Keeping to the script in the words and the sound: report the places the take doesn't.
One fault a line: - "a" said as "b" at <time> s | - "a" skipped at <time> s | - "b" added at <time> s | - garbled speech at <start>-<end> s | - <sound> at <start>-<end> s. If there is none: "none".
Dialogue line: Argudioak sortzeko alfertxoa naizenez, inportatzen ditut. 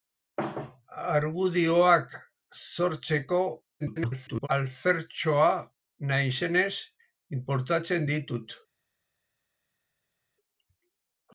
- garbled speech at 3.8-4.5 s